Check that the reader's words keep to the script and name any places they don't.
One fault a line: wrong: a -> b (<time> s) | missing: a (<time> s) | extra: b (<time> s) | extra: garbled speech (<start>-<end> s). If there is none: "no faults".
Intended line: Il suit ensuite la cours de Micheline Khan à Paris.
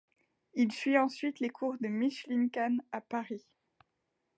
wrong: la -> les (1.4 s)